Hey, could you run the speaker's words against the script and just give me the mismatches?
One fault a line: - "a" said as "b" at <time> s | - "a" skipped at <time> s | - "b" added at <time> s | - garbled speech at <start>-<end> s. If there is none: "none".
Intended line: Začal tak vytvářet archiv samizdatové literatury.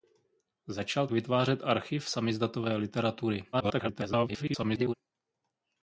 - "tak" skipped at 1.1 s
- garbled speech at 3.5-4.9 s